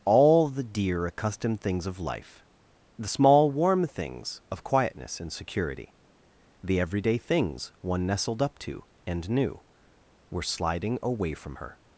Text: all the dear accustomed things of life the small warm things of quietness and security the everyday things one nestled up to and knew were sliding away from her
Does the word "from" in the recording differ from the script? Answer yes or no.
no